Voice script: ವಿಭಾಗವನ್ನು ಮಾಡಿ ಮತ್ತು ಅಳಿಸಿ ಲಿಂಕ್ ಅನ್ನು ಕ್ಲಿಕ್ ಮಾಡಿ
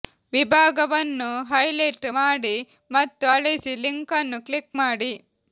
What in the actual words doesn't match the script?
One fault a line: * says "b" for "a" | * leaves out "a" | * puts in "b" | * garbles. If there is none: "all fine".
* puts in "ಹೈಲೈಟ್"